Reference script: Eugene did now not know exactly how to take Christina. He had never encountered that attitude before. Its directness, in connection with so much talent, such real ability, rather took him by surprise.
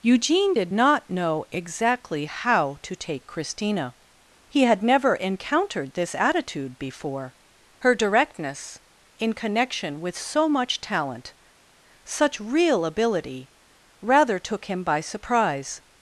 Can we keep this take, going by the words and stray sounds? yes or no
no